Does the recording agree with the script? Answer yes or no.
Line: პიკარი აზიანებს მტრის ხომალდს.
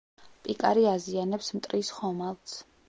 yes